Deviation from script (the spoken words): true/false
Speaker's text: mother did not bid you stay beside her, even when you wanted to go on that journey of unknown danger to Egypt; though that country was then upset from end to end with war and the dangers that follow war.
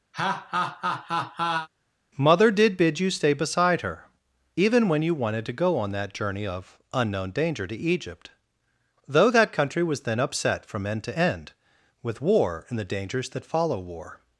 true